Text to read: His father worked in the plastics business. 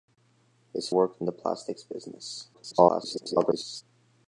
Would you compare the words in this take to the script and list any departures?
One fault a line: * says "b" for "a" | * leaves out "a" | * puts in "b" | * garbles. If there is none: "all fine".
* leaves out "father"
* garbles